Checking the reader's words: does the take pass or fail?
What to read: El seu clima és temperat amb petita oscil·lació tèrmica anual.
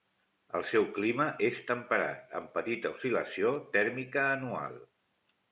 pass